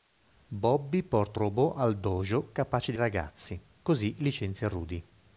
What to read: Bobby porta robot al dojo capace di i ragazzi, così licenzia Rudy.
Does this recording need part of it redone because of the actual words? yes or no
no